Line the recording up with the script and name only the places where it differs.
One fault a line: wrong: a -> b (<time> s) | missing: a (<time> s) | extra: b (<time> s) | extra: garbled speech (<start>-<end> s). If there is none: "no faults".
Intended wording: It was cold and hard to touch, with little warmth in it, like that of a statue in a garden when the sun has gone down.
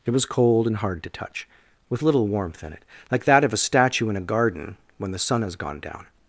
no faults